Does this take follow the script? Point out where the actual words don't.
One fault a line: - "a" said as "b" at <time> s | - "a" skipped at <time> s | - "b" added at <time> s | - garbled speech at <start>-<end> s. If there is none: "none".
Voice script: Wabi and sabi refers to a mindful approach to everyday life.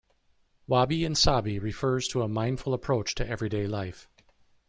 none